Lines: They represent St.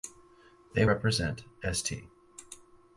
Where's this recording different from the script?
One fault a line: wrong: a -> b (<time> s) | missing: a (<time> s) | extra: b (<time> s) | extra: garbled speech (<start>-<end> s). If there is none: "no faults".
no faults